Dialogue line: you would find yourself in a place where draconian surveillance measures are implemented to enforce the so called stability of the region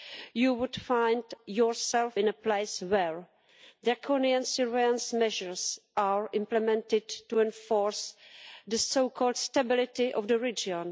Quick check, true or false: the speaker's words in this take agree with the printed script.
true